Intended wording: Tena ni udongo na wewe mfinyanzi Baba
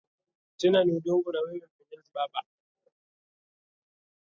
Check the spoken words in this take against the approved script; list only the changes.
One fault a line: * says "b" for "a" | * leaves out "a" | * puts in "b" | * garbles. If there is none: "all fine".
all fine